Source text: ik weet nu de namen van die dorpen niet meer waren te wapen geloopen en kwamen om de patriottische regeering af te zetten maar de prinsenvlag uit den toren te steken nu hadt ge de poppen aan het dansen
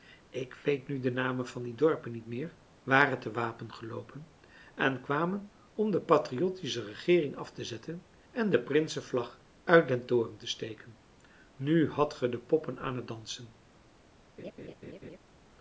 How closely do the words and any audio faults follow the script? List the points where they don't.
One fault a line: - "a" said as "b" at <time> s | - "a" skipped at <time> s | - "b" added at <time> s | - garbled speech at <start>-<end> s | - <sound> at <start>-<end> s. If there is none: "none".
- "maar" said as "en" at 8.3 s
- laugh at 14.4-15.2 s